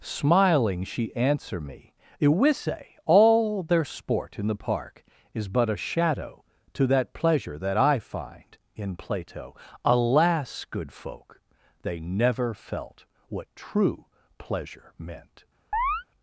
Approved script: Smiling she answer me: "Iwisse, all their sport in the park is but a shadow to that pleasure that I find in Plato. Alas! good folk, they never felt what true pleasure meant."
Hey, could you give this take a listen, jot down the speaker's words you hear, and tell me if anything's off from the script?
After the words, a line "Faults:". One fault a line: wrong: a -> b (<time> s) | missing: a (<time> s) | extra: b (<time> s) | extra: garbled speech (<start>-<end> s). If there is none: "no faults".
Smiling she answer me: "Iwisse, all their sport in the park is but a shadow to that pleasure that I find in Plato. Alas! good folk, they never felt what true pleasure meant."
Faults:
no faults